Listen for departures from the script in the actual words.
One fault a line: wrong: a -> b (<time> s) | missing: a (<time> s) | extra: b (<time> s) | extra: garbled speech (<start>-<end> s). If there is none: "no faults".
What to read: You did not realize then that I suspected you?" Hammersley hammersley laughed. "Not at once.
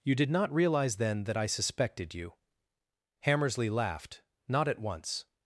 missing: hammersley (3.7 s)